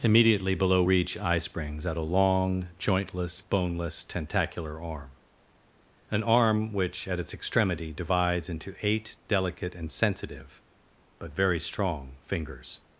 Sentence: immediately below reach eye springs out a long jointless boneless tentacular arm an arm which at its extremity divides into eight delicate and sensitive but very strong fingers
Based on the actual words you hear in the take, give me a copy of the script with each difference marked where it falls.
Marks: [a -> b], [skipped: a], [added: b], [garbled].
immediately below reach eye springs out a long jointless boneless tentacular arm an arm which at its extremity divides into eight delicate and sensitive but very strong fingers